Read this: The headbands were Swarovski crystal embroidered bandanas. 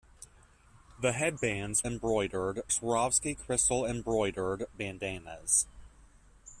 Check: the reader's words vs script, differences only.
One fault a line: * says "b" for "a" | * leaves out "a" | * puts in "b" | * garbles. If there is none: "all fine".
* says "embroidered" for "were"